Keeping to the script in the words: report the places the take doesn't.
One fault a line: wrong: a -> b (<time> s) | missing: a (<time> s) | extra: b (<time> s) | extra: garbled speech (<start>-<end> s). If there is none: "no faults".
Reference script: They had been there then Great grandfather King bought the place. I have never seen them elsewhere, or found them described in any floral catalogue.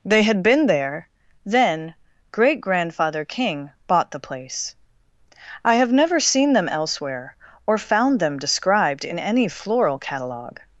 no faults